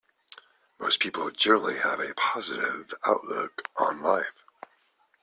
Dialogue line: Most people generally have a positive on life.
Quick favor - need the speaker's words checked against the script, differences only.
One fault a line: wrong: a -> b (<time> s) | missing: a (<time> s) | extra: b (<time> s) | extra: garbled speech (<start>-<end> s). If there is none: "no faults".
extra: outlook (3.1 s)